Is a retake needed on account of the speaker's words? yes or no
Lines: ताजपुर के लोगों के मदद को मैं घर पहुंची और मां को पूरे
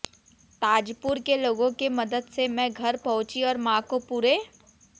yes